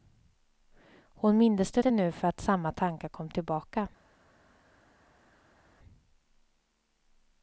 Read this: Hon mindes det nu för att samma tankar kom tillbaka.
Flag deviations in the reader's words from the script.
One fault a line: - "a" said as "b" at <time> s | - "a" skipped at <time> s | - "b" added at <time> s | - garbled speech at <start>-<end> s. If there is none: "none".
- "det" added at 1.8 s